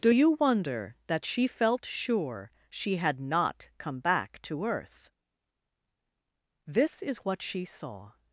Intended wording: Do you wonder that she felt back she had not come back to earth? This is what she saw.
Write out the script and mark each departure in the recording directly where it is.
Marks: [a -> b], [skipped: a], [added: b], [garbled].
Do you wonder that she felt [back -> sure] she had not come back to earth? This is what she saw.